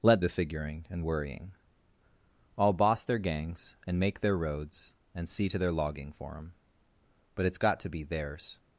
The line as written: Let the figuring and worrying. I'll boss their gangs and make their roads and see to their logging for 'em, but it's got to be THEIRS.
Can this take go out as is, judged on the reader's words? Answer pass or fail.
pass